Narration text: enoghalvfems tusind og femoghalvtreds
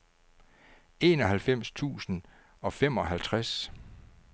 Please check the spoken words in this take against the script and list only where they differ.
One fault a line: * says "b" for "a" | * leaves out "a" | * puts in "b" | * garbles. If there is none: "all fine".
all fine